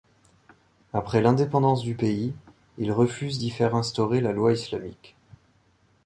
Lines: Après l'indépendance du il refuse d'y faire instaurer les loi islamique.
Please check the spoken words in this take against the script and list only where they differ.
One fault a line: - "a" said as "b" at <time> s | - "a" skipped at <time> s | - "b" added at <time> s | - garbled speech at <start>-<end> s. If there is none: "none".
- "pays" added at 1.9 s
- "les" said as "la" at 4.2 s